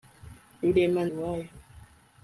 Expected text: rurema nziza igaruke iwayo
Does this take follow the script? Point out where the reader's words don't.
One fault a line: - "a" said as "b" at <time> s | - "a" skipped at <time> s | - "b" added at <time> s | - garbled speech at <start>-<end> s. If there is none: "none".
- "nziza igaruke" skipped at 1.0 s